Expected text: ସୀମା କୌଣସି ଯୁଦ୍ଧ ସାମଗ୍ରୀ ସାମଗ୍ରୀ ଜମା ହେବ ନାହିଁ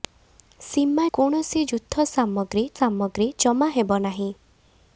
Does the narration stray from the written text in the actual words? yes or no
no